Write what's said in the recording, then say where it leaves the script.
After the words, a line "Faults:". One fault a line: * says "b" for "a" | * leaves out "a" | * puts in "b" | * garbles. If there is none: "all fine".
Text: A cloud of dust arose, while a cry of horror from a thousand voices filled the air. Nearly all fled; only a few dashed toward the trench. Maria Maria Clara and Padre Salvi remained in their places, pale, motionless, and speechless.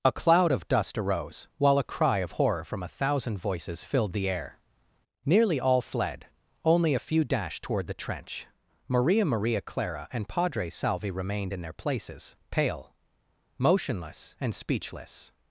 A cloud of dust arose, while a cry of horror from a thousand voices filled the air. Nearly all fled; only a few dashed toward the trench. Maria Maria Clara and Padre Salvi remained in their places, pale, motionless, and speechless.
Faults:
all fine